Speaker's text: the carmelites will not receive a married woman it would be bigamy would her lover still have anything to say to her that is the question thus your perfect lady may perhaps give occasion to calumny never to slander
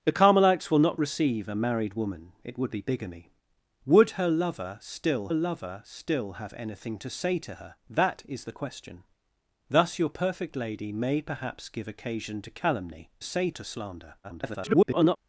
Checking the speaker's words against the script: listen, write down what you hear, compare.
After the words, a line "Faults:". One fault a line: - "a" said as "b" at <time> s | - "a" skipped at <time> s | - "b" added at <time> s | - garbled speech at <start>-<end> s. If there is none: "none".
the carmelites will not receive a married woman it would be bigamy would her lover still lover still have anything to say to her that is the question thus your perfect lady may perhaps give occasion to calumny say to slander [garbled]
Faults:
- "lover still" added at 5.3 s
- "never" said as "say" at 13.2 s
- garbled speech at 14.2-15.2 s